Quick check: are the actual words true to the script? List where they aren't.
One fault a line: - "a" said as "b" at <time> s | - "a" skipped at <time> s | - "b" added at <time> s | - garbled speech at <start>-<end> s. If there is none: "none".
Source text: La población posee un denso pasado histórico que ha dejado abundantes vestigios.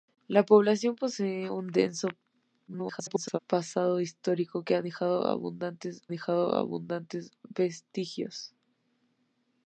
- garbled speech at 2.7-3.4 s
- "dejado abundantes" added at 6.1 s